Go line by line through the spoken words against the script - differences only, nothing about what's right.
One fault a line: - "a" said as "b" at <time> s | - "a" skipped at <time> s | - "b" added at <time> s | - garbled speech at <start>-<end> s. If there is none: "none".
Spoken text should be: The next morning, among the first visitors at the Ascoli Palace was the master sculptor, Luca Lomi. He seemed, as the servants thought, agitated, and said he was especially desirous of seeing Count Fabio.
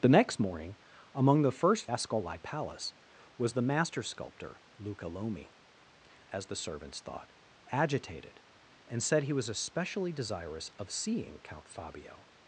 - "visitors at the" skipped at 1.9 s
- "He seemed" skipped at 5.5 s